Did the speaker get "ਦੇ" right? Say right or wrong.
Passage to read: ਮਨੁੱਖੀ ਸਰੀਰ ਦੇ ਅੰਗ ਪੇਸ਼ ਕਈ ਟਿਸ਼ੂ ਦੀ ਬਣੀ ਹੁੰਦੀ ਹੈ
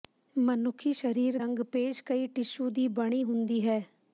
wrong